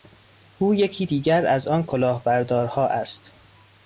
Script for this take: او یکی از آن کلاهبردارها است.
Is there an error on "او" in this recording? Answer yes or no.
no